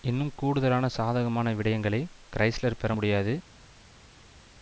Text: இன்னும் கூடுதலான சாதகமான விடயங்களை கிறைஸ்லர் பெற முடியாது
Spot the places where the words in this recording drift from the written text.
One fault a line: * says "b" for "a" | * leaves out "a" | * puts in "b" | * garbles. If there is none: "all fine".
all fine